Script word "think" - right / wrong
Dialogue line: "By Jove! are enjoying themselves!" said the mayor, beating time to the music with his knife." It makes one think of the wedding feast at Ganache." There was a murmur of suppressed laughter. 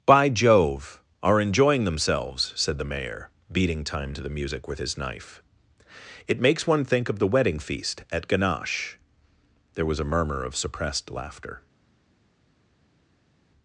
right